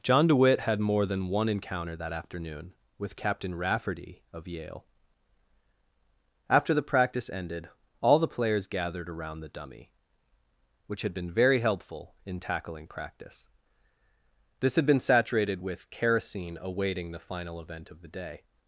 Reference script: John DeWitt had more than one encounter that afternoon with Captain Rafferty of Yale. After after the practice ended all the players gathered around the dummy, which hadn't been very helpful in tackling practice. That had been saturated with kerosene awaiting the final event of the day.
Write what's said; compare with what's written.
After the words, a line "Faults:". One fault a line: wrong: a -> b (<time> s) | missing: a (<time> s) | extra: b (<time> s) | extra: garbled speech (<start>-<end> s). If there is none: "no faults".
John DeWitt had more than one encounter that afternoon with Captain Rafferty of Yale. After the practice ended all the players gathered around the dummy, which had been very helpful in tackling practice. This had been saturated with kerosene awaiting the final event of the day.
Faults:
missing: after (6.7 s)
wrong: hadn't -> had (11.0 s)
wrong: That -> This (14.6 s)